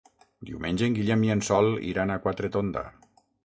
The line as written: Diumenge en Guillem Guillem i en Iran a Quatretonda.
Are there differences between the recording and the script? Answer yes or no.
yes